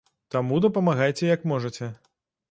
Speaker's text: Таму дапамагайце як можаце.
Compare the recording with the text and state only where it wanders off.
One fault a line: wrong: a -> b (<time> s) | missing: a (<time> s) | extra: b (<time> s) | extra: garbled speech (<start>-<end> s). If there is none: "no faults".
no faults